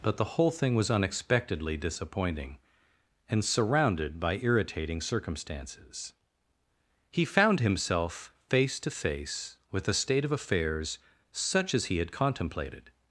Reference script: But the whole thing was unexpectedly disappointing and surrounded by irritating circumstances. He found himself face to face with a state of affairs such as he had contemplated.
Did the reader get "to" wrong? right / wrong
right